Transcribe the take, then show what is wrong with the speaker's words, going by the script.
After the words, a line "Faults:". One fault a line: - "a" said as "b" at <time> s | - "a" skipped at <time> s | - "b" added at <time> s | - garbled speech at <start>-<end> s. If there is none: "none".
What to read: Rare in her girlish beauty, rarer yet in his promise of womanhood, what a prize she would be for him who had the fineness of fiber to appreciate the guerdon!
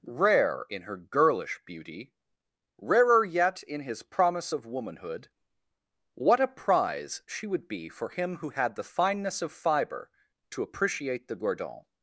Rare in her girlish beauty, rarer yet in his promise of womanhood, what a prize she would be for him who had the fineness of fiber to appreciate the guerdon!
Faults:
none